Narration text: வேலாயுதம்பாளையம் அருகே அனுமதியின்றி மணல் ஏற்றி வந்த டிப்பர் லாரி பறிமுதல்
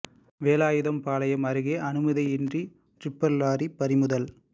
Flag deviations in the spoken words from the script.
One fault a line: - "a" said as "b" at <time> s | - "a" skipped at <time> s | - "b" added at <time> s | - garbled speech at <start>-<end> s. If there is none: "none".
- "மணல் ஏற்றி வந்த" skipped at 2.6 s